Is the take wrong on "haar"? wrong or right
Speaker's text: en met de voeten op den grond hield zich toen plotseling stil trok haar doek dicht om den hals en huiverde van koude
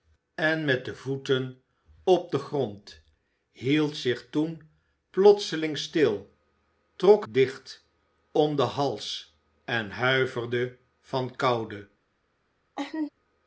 wrong